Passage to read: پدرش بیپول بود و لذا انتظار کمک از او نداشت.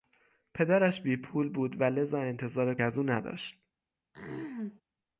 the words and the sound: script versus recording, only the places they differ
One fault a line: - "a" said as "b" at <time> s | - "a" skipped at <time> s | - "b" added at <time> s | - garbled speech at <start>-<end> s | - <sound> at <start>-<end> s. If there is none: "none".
- "کمک" skipped at 2.8 s
- throat clearing at 4.1-4.8 s